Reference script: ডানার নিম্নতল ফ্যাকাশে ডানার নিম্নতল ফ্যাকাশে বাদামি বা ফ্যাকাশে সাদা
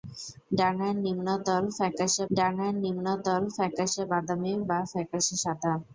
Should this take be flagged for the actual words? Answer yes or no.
no